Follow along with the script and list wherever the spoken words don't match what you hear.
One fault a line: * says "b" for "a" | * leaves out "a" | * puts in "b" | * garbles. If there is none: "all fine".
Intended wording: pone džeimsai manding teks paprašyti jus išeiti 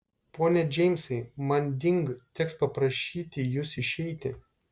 all fine